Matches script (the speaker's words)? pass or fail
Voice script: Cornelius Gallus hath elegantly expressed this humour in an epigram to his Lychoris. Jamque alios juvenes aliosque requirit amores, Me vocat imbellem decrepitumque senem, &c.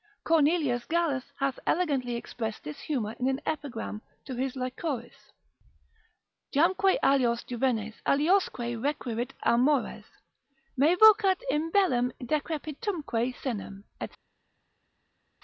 pass